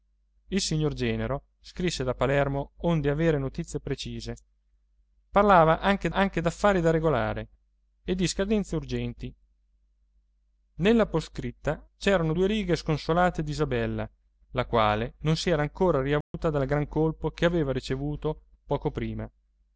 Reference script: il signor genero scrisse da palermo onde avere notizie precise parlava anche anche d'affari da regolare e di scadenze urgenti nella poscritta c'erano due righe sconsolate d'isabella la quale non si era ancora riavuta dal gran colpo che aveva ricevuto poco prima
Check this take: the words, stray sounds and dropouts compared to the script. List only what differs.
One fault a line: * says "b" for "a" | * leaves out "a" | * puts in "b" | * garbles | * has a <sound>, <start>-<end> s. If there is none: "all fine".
* has a dropout, 16.2-16.3 s